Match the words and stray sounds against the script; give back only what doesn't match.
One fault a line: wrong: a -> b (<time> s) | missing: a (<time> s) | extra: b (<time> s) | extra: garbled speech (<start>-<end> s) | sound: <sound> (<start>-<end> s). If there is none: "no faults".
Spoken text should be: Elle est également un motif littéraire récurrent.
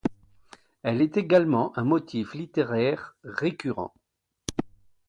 no faults